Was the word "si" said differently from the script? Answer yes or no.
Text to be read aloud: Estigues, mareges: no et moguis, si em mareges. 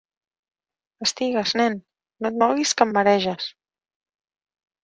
yes